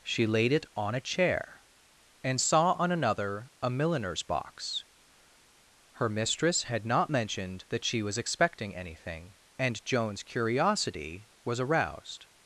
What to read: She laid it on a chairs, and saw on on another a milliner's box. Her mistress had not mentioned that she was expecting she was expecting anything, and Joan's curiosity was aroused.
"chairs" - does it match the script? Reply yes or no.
no